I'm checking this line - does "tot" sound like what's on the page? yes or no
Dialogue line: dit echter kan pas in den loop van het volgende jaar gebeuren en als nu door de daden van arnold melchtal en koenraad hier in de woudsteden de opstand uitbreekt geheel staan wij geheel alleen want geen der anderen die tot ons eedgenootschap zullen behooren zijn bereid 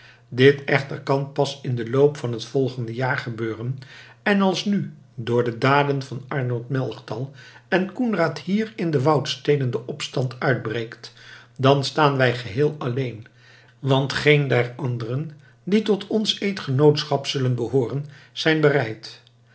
yes